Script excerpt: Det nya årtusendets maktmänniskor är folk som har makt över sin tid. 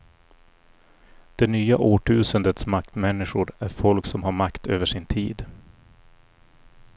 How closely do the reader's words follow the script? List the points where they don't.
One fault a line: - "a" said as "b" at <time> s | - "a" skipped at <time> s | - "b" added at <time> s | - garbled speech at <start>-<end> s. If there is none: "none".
none